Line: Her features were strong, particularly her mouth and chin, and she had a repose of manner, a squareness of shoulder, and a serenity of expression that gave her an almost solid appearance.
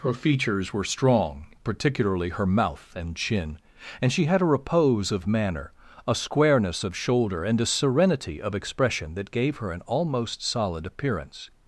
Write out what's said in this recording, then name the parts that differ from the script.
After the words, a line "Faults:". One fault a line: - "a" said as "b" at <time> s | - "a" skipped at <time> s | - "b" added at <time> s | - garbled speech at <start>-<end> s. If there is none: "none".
Her features were strong, particularly her mouth and chin, and she had a repose of manner, a squareness of shoulder, and a serenity of expression that gave her an almost solid appearance.
Faults:
none